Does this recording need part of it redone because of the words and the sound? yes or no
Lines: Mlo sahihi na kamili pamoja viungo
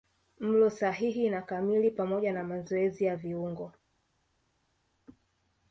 yes